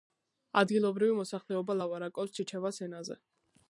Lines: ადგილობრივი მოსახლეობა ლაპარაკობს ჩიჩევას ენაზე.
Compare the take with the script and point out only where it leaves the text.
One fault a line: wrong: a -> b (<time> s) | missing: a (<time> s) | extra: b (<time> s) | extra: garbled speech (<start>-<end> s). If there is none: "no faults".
no faults